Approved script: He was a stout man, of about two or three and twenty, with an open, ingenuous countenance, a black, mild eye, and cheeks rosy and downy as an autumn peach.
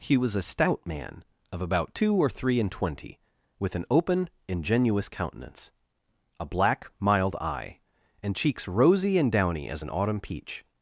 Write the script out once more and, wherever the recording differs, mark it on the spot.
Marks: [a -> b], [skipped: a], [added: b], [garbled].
He was a stout man, of about two or three and twenty, with an open, ingenuous countenance, a black, mild eye, and cheeks rosy and downy as an autumn peach.